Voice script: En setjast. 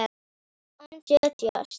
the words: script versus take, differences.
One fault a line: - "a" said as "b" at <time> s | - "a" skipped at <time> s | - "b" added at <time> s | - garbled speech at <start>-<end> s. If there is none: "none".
none